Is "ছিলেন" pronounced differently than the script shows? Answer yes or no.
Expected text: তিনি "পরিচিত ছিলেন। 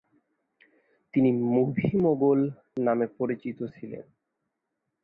no